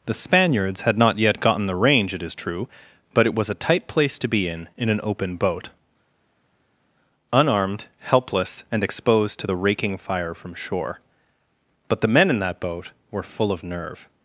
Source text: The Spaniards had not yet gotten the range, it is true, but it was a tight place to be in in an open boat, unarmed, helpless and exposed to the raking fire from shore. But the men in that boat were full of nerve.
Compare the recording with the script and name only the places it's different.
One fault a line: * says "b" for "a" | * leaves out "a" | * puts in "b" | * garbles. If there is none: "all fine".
all fine